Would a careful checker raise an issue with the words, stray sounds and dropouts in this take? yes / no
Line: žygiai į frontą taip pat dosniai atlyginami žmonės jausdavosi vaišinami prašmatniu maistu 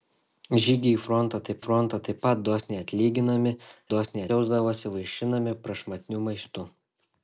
yes